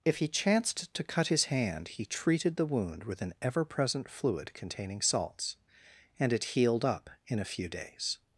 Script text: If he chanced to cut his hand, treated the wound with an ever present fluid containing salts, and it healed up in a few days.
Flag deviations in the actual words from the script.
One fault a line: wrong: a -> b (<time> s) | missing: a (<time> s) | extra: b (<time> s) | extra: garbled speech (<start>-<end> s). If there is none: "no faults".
extra: he (1.9 s)